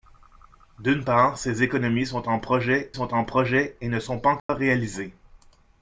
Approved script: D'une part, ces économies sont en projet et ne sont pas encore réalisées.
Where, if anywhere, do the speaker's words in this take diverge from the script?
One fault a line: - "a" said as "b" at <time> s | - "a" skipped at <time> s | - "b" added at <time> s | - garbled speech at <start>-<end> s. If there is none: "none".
- "sont en projet" added at 2.9 s